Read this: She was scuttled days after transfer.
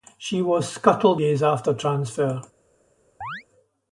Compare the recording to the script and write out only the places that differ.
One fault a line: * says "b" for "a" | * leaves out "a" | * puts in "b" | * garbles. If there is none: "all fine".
all fine